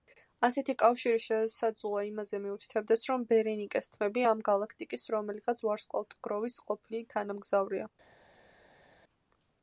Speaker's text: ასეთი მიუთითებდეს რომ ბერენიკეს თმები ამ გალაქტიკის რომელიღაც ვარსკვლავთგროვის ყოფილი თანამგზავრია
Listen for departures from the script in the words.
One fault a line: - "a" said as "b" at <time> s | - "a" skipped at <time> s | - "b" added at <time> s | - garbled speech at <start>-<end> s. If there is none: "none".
- "კავშირი შესაძლოა იმაზე" added at 0.8 s